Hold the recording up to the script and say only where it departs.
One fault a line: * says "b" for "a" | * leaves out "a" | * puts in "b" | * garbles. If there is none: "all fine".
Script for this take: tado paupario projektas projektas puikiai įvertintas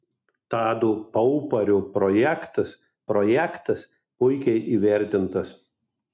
all fine